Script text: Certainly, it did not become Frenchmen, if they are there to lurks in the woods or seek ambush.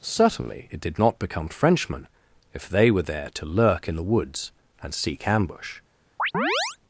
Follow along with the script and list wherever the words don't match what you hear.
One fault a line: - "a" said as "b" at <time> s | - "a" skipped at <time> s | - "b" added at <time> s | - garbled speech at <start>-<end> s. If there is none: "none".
- "are" said as "were" at 2.9 s
- "lurks" said as "lurk" at 3.5 s
- "or" said as "and" at 4.8 s